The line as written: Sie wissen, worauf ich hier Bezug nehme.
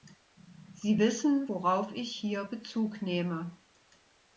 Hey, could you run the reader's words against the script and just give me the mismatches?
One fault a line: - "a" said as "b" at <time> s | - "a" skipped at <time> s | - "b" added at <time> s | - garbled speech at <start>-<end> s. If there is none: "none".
none